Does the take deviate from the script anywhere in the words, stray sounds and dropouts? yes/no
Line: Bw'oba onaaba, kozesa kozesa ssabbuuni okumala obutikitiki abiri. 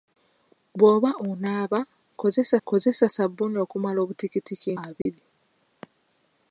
yes